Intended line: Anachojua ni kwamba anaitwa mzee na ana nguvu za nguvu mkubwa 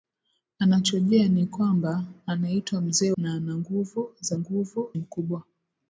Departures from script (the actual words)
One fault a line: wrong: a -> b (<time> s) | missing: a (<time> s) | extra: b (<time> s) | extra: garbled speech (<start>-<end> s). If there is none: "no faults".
no faults